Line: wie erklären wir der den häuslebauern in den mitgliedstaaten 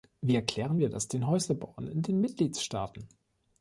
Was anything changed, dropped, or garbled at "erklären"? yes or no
no